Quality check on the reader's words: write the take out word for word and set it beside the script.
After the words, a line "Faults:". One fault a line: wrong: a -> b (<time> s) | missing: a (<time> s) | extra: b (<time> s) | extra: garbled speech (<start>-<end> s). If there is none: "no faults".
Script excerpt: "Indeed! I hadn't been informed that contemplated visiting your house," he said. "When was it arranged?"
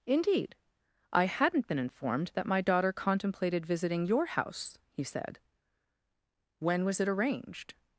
"Indeed! I hadn't been informed that my daughter contemplated visiting your house," he said. "When was it arranged?"
Faults:
extra: my daughter (2.5 s)